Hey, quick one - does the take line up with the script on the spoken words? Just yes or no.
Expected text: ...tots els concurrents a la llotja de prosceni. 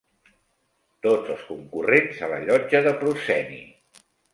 yes